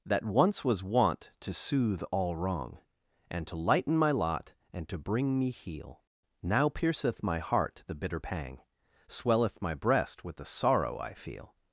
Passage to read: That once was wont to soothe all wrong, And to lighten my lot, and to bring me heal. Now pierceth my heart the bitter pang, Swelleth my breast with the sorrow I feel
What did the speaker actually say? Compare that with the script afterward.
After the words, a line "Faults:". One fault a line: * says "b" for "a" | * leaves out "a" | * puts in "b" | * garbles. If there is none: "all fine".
That once was wont to soothe all wrong, And to lighten my lot, and to bring me heal. Now pierceth my heart the bitter pang, Swelleth my breast with the sorrow I feel
Faults:
all fine